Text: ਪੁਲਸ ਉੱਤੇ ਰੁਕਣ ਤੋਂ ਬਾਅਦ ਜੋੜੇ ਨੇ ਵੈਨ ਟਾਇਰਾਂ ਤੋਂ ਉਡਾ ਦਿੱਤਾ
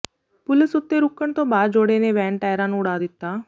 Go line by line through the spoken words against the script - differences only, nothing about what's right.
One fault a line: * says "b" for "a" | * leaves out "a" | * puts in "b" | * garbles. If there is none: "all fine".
* says "ਨੂੰ" for "ਤੋਂ"